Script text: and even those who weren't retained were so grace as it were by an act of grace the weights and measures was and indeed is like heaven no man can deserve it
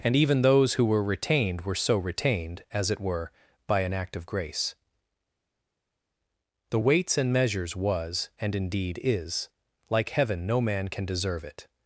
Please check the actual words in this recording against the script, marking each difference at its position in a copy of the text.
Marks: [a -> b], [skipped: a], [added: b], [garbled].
and even those who [weren't -> were] retained were so [grace -> retained] as it were by an act of grace the weights and measures was and indeed is like heaven no man can deserve it